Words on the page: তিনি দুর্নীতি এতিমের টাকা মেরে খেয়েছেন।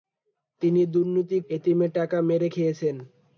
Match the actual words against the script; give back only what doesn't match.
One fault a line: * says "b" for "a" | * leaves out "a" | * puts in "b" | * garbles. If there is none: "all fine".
all fine